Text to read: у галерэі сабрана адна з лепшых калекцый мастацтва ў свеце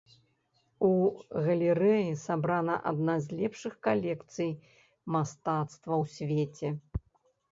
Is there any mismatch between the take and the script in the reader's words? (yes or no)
no